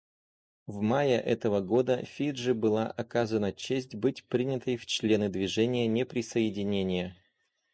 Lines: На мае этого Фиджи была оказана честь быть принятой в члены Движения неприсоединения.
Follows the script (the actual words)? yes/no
no